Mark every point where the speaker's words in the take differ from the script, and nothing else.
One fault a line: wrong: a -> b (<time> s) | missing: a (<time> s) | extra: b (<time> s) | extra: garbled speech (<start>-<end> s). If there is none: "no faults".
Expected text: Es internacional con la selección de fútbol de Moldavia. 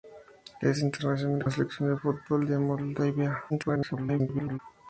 missing: con (1.4 s)
extra: garbled speech (3.5-4.6 s)